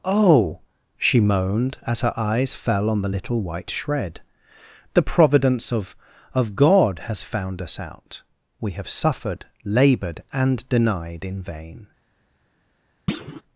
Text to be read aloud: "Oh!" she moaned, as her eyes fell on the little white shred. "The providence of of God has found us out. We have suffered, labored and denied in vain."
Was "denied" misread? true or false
false